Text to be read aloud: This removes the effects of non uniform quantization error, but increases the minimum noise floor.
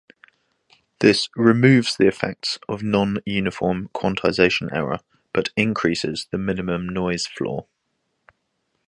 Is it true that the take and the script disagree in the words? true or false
false